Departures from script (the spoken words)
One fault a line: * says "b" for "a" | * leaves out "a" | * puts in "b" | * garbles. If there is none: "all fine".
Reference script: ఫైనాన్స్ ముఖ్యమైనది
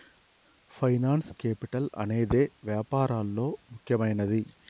* puts in "కేపిటల్ అనేదే వ్యాపారాల్లో"